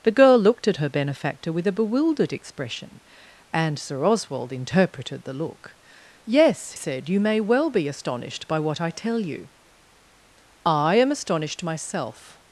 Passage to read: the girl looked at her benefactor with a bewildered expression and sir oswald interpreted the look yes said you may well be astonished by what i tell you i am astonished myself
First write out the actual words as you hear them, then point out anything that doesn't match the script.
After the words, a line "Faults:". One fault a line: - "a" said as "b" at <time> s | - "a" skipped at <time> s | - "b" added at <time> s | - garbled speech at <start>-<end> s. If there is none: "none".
the girl looked at her benefactor with a bewildered expression and sir oswald interpreted the look yes said you may well be astonished by what i tell you i am astonished myself
Faults:
none